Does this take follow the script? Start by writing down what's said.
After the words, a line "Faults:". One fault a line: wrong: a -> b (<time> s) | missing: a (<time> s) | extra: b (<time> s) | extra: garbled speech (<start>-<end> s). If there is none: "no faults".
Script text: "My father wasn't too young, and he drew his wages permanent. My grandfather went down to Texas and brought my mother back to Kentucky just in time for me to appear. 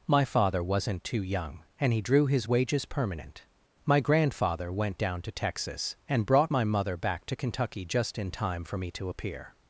"My father wasn't too young, and he drew his wages permanent. My grandfather went down to Texas and brought my mother back to Kentucky just in time for me to appear.
Faults:
no faults